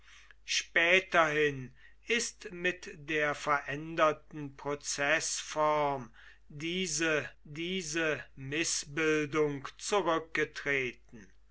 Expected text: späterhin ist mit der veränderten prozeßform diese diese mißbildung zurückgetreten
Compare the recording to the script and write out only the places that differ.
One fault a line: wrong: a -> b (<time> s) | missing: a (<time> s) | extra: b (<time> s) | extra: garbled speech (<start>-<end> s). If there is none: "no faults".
no faults